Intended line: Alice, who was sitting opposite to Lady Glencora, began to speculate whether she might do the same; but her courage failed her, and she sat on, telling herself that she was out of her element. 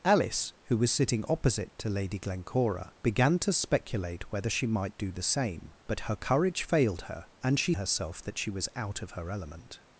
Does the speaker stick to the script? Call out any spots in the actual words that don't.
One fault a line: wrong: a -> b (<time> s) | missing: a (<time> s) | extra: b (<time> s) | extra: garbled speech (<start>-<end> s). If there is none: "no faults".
missing: sat on telling (7.7 s)